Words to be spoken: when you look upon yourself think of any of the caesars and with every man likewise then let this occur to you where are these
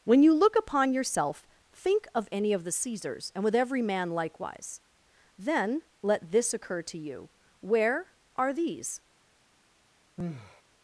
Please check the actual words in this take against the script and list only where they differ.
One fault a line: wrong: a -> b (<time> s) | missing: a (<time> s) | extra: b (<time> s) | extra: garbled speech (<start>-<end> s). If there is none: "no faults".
no faults